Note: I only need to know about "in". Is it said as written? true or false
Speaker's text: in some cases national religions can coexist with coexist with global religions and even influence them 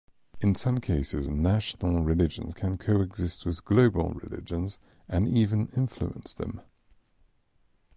true